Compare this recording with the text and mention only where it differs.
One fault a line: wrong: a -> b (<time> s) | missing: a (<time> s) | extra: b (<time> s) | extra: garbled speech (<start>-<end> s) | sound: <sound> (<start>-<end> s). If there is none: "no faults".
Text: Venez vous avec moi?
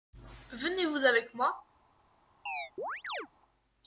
sound: chirp (2.5-3.3 s)